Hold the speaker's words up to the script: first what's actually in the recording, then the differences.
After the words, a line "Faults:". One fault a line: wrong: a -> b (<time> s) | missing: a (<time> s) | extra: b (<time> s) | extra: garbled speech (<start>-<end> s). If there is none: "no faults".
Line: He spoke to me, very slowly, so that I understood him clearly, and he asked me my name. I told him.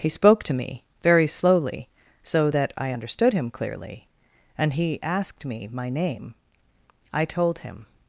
He spoke to me, very slowly, so that I understood him clearly, and he asked me my name. I told him.
Faults:
no faults